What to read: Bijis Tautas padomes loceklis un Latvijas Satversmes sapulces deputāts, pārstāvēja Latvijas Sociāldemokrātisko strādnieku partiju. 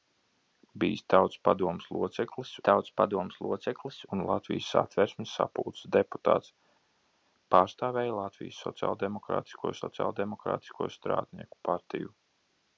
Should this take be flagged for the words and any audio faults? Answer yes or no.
yes